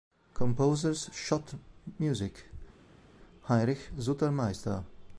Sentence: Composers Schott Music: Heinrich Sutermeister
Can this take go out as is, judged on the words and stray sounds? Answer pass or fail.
pass